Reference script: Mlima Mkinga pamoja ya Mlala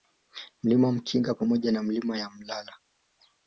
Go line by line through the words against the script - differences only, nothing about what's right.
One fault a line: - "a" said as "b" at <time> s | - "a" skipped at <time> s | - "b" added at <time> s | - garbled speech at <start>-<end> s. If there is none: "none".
- "na Milima" added at 1.7 s